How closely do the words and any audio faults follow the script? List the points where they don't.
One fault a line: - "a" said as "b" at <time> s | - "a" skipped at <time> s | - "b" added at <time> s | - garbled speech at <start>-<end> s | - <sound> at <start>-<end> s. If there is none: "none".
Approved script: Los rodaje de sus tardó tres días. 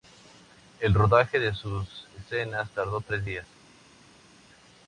- "Los" said as "El" at 0.8 s
- "escenas" added at 2.2 s